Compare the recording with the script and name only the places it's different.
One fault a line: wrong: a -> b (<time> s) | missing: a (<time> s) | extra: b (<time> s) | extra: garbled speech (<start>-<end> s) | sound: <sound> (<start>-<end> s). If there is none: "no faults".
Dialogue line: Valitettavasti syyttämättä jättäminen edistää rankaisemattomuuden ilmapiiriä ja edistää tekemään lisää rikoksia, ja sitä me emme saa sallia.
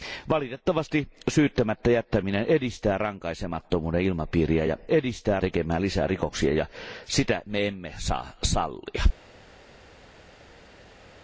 no faults